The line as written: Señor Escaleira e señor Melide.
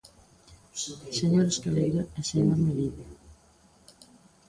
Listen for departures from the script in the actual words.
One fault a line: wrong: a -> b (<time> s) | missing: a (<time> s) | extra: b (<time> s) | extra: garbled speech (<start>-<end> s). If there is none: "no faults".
no faults